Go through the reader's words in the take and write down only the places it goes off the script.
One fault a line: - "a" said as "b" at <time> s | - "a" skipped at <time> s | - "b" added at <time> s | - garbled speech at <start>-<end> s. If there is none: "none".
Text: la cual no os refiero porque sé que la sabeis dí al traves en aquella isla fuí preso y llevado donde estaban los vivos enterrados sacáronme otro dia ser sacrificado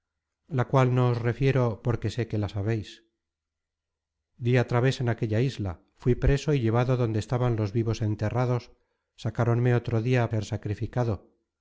none